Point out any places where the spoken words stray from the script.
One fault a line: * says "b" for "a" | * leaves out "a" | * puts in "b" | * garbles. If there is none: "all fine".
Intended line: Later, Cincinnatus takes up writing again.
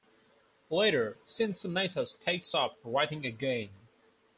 all fine